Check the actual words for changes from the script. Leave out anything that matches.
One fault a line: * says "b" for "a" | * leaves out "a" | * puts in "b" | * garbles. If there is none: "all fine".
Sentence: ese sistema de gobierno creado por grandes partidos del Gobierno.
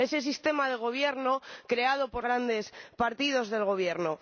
all fine